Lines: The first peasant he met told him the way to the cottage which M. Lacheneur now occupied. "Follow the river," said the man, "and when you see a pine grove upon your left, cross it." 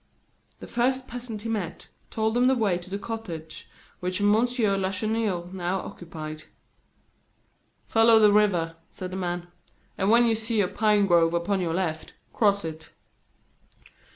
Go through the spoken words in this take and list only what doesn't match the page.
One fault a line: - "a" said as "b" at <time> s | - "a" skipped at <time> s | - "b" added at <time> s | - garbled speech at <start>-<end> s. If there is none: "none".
none